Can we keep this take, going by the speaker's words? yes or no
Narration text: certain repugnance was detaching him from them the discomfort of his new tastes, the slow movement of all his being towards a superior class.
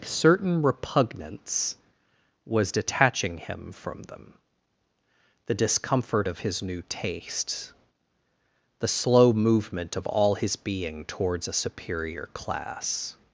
yes